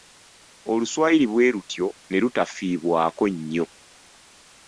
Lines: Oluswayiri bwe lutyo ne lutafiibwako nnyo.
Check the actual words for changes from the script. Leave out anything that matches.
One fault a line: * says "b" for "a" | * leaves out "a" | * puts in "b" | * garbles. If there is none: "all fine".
all fine